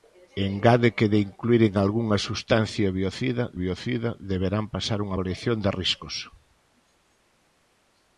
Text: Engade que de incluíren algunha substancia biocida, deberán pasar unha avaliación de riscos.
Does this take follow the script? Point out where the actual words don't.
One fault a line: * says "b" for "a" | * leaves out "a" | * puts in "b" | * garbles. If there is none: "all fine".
* puts in "biocida"